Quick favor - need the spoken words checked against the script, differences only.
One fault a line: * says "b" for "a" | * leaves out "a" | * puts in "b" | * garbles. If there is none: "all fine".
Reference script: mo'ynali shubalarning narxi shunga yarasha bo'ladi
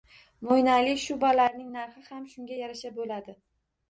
* puts in "ham"